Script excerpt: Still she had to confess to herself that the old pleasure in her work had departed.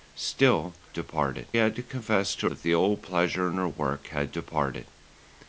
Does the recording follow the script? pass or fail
fail